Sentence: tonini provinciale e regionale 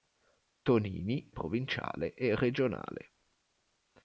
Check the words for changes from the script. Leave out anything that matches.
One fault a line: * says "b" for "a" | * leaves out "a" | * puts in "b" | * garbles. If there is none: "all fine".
all fine